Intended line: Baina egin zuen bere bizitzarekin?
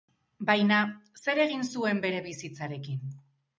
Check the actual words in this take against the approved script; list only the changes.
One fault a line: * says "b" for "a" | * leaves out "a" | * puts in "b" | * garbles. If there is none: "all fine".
* puts in "zer"